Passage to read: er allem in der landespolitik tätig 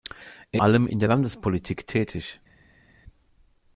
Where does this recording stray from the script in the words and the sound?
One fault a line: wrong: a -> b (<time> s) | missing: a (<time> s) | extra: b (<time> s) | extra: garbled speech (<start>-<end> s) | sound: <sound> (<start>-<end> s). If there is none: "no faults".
no faults